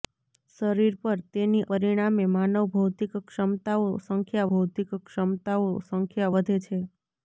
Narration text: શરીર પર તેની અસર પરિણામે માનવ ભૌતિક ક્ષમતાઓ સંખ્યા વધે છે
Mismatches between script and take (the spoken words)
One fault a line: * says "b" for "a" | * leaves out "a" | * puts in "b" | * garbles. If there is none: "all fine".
* leaves out "અસર"
* puts in "ભૌતિક ક્ષમતાઓ સંખ્યા"